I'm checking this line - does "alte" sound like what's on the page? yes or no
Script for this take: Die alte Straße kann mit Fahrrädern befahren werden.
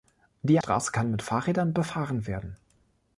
no